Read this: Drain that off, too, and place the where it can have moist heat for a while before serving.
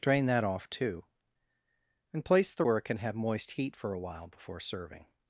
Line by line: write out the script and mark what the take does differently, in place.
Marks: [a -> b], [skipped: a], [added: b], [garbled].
Drain that off, too, and place the where it can have moist heat for a while before serving.